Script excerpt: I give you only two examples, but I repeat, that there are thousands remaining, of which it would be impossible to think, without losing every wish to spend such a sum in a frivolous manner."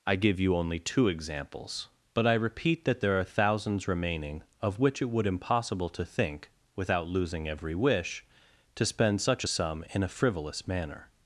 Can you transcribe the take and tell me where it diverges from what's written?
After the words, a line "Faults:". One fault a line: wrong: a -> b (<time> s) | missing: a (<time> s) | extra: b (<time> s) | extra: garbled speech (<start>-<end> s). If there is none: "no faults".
I give you only two examples, but I repeat, that there are thousands remaining, of which it would impossible to think, without losing every wish to spend such a sum in a frivolous manner."
Faults:
missing: be (5.3 s)